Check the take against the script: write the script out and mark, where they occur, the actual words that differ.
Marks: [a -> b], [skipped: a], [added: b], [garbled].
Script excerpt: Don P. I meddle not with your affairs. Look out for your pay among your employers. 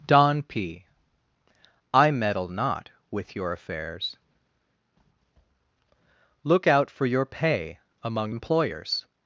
Don P. I meddle not with your affairs. Look out for your pay among [skipped: your] employers.